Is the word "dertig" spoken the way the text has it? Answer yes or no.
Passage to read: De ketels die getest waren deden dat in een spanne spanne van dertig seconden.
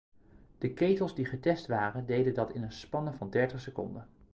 yes